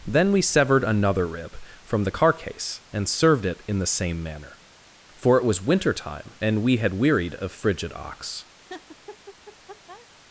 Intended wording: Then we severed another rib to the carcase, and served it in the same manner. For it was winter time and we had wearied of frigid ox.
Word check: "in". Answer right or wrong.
right